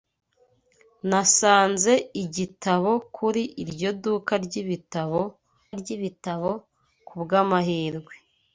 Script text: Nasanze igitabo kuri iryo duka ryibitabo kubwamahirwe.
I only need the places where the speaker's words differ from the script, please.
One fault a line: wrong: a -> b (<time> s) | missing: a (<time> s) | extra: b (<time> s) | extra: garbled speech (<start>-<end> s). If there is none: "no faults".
extra: ryibitabo (5.8 s)